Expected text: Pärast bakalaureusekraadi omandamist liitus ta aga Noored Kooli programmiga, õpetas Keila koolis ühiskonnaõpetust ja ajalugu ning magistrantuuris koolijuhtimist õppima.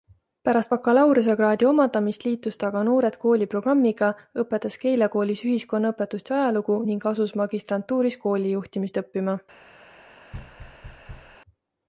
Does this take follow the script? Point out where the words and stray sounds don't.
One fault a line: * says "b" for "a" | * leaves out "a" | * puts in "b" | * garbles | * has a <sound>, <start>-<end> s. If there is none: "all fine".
* puts in "asus"
* has a thud, 10.3-11.4 s